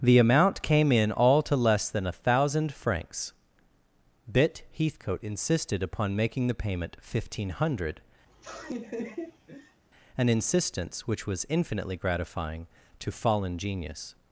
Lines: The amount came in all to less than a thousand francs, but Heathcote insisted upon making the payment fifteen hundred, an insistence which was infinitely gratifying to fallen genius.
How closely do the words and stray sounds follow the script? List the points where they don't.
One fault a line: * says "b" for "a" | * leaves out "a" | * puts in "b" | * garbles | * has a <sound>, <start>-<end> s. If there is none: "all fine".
* says "bit" for "but"
* has a laugh, 8.3-9.8 s